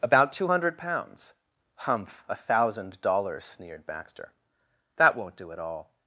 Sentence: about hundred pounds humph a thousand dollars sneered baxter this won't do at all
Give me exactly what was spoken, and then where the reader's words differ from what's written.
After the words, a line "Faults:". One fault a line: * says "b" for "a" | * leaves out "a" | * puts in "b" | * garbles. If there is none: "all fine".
about two hundred pounds humph a thousand dollars sneered baxter that won't do at all
Faults:
* puts in "two"
* says "that" for "this"